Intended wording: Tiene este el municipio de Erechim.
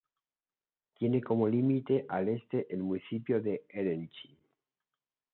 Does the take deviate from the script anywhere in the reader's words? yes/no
yes